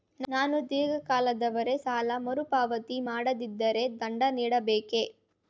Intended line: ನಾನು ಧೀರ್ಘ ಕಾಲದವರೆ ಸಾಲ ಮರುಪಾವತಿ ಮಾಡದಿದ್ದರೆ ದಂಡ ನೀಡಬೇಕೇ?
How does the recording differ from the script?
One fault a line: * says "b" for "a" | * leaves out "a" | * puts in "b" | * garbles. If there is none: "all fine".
all fine